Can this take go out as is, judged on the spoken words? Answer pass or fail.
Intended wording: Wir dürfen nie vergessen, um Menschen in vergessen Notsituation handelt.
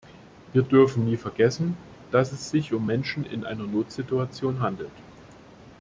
fail